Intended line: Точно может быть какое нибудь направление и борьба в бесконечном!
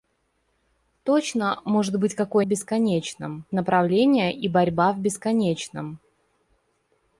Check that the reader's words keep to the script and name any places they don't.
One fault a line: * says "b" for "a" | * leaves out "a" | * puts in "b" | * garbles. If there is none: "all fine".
* says "бесконечном" for "нибудь"